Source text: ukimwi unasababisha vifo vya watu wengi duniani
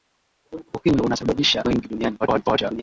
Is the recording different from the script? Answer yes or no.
yes